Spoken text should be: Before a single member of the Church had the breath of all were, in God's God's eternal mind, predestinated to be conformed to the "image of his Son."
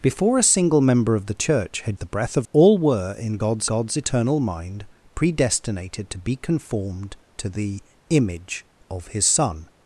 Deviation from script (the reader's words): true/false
false